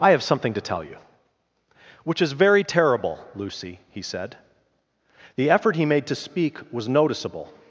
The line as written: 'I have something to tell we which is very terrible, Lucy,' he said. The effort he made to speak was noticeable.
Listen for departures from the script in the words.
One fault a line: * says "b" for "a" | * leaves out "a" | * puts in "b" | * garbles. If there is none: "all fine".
* says "you" for "we"